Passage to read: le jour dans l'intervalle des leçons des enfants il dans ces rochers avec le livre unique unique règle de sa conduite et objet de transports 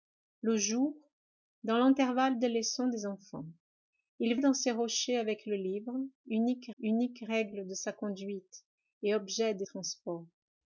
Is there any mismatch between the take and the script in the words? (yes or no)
no